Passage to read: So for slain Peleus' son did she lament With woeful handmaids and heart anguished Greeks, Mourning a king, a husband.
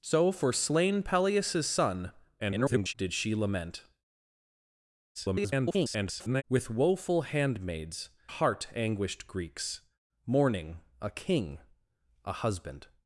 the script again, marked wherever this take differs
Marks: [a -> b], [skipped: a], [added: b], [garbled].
So for slain Peleus' son [garbled] did she lament [garbled] With woeful handmaids [skipped: and] heart anguished Greeks, Mourning a king, a husband.